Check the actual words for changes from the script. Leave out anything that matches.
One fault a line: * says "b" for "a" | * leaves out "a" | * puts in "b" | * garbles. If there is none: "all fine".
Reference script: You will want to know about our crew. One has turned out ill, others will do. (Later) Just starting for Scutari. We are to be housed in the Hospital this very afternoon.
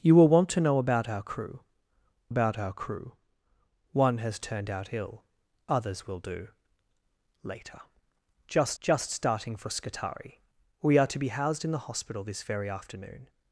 * puts in "about our crew"
* puts in "Just"